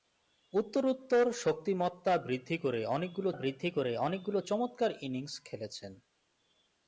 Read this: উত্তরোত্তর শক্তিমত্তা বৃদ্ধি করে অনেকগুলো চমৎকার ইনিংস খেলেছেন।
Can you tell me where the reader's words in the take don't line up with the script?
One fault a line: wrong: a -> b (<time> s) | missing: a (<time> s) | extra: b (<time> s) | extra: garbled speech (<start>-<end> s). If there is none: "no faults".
extra: বৃদ্ধি করে অনেকগুলো (3.3 s)